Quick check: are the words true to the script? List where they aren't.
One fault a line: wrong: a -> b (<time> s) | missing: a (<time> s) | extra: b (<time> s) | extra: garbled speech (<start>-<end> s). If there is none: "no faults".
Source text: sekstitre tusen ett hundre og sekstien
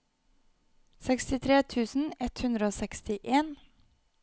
no faults